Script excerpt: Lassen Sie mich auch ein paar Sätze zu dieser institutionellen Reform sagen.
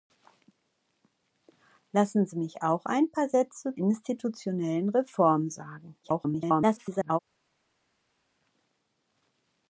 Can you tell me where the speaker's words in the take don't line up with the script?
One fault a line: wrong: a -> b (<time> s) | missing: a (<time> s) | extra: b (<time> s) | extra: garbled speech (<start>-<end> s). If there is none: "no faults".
missing: zu dieser (3.8 s)
extra: garbled speech (6.0-7.2 s)